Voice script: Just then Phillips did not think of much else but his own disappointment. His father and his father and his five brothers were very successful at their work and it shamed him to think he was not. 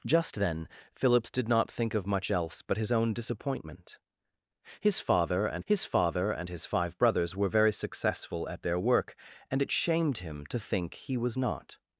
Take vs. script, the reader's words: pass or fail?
pass